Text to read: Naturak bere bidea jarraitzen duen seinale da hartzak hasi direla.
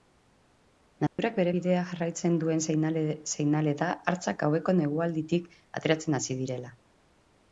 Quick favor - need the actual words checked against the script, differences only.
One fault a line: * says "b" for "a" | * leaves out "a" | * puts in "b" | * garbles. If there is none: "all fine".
* puts in "gaueko negualditik ateratzen"